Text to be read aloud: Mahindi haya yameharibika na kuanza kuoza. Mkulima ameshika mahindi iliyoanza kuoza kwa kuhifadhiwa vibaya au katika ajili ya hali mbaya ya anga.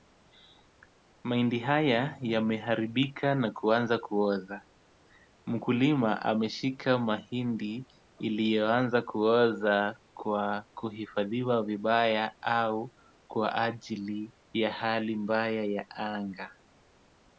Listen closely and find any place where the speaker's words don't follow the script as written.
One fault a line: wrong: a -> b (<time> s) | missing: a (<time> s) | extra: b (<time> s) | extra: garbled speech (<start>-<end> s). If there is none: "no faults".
wrong: katika -> kwa (13.3 s)